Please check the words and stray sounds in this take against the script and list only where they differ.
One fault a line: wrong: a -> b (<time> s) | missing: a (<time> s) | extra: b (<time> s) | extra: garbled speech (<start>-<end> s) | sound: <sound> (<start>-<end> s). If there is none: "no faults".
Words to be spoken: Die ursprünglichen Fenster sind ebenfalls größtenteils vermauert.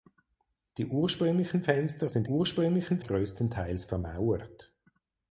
wrong: ebenfalls -> ursprünglichen (2.2 s)